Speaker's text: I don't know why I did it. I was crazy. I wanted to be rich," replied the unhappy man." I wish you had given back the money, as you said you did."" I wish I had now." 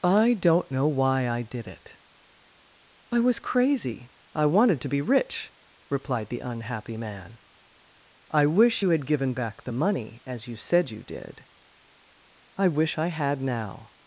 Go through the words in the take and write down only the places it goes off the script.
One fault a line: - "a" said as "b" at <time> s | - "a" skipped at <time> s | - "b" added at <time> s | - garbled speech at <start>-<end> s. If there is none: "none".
none